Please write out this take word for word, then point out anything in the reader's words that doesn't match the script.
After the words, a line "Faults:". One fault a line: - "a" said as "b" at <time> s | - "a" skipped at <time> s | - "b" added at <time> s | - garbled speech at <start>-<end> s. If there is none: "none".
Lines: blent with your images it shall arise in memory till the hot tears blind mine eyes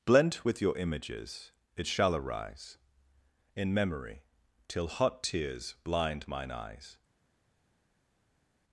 blent with your images it shall arise in memory till hot tears blind mine eyes
Faults:
- "the" skipped at 4.9 s